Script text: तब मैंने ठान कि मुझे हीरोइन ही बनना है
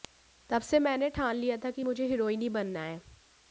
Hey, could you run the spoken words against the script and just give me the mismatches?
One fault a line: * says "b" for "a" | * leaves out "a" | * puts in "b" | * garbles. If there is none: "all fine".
* puts in "से"
* puts in "लिया था"